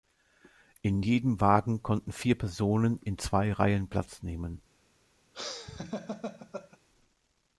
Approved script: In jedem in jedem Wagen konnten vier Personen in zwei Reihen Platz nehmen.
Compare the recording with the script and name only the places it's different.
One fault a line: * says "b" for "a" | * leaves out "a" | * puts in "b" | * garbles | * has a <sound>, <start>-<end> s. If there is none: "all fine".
* leaves out "in jedem"
* has a laugh, 5.3-6.8 s